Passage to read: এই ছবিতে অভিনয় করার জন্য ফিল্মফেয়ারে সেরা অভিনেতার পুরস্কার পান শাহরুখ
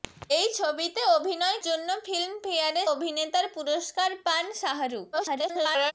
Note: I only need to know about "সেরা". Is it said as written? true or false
false